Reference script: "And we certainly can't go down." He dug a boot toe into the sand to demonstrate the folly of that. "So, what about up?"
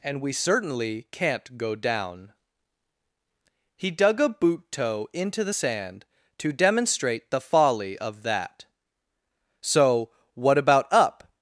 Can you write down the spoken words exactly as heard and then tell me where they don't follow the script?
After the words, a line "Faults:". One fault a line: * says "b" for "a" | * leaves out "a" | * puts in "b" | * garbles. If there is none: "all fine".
"And we certainly can't go down." He dug a boot toe into the sand to demonstrate the folly of that. "So, what about up?"
Faults:
all fine